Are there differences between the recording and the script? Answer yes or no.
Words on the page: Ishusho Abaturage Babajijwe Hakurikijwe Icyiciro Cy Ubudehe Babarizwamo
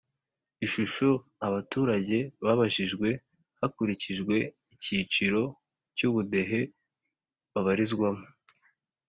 no